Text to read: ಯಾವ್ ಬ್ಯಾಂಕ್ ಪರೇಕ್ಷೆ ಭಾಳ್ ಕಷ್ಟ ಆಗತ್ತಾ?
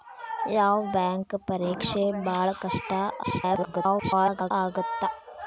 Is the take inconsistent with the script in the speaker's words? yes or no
yes